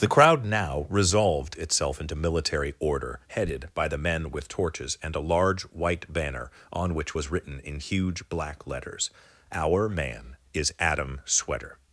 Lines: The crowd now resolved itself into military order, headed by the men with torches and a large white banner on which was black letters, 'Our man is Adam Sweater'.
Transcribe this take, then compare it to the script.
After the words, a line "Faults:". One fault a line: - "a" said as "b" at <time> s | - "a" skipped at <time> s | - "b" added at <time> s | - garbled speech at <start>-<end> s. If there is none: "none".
The crowd now resolved itself into military order, headed by the men with torches and a large white banner on which was written in huge black letters, 'Our man is Adam Sweater'.
Faults:
- "written in huge" added at 7.3 s